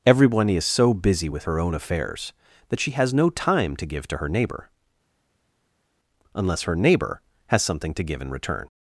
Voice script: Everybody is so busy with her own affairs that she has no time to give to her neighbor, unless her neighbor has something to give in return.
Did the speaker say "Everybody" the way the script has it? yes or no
no